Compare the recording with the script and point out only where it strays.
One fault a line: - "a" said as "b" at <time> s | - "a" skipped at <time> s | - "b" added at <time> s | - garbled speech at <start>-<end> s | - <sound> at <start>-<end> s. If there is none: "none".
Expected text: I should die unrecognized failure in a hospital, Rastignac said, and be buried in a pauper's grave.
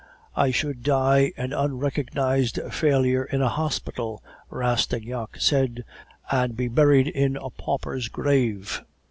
- "an" added at 1.4 s